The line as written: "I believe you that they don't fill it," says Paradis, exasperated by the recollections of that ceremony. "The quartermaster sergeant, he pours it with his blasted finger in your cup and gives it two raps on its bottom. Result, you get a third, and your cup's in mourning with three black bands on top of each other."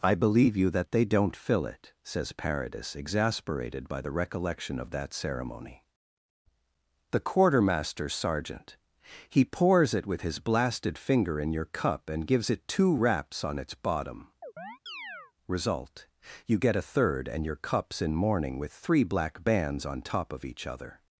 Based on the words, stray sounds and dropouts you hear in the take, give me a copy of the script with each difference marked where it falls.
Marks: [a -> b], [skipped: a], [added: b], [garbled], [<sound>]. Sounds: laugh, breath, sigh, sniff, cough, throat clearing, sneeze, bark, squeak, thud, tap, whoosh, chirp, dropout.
"I believe you that they don't fill it," says Paradis, exasperated by the [recollections -> recollection] of that ceremony. "The quartermaster sergeant, he pours it with his blasted finger in your cup and gives it two raps on its bottom. [chirp] Result, you get a third, and your cup's in mourning with three black bands on top of each other."